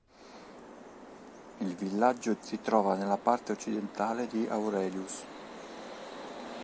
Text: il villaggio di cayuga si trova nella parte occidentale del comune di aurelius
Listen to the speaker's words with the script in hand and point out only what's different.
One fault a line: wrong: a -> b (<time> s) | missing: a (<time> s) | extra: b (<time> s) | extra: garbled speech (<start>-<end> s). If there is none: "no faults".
missing: di cayuga (2.3 s)
missing: del comune (4.3 s)